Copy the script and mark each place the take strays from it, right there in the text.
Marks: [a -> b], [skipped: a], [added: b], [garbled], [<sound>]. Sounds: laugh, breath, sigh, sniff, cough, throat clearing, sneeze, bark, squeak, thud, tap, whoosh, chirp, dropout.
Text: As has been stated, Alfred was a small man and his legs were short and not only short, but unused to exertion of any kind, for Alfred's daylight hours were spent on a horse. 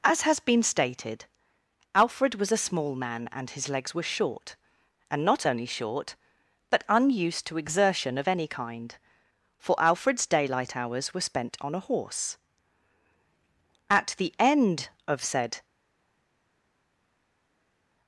As has been stated, Alfred was a small man and his legs were short and not only short, but unused to exertion of any kind, for Alfred's daylight hours were spent on a horse. [added: At the end of said]